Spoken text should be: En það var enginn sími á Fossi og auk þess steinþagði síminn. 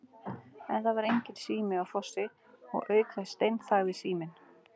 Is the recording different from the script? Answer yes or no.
no